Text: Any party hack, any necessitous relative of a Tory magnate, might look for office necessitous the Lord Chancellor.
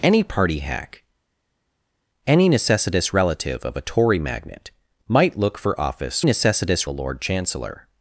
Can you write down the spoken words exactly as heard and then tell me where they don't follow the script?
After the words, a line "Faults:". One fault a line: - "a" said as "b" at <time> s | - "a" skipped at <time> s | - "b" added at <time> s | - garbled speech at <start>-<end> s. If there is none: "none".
Any party hack, any necessitous relative of a Tory magnate, might look for office necessitous the Lord Chancellor.
Faults:
none